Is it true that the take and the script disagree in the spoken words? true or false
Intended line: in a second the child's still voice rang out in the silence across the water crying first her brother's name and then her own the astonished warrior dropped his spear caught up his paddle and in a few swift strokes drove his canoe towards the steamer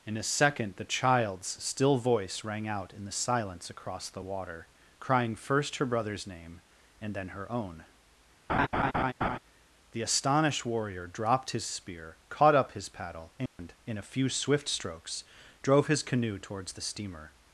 false